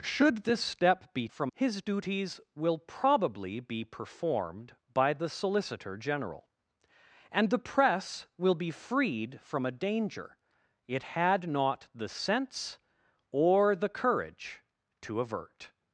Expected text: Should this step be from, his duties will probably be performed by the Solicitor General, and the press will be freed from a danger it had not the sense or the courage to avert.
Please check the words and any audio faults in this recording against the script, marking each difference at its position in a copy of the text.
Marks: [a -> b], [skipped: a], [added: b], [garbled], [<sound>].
Should this step be from, his duties will probably be performed by the Solicitor General, and the press will be freed from a danger it had not the sense or the courage to avert.